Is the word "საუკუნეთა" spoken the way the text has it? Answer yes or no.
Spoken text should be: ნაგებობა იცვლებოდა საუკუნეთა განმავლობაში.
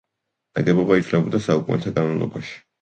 yes